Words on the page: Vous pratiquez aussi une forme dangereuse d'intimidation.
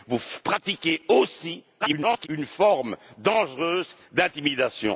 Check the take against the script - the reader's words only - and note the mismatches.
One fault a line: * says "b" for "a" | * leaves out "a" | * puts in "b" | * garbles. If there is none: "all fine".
* garbles